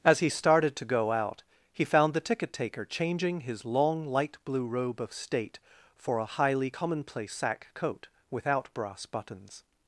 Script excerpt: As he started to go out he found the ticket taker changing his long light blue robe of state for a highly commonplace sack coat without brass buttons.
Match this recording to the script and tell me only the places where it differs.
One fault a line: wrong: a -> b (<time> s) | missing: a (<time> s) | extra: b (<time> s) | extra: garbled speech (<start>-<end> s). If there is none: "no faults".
no faults